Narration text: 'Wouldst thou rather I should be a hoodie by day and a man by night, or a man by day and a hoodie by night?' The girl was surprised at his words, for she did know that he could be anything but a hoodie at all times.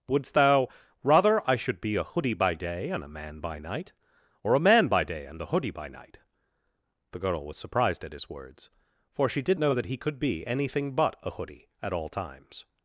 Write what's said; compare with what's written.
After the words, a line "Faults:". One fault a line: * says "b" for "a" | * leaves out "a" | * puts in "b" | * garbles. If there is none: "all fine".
'Wouldst thou rather I should be a hoodie by day and a man by night, or a man by day and a hoodie by night?' The girl was surprised at his words, for she did know that he could be anything but a hoodie at all times.
Faults:
all fine